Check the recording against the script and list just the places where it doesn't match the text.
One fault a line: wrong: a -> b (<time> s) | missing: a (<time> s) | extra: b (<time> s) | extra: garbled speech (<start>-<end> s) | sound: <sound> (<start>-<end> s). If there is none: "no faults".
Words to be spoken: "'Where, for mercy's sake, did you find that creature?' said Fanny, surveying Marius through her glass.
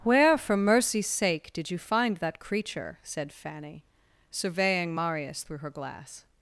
no faults